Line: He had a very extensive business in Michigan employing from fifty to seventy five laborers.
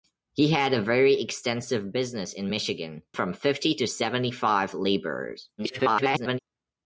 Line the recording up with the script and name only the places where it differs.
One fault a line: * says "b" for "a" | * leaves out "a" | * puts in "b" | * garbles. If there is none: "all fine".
* leaves out "employing"
* garbles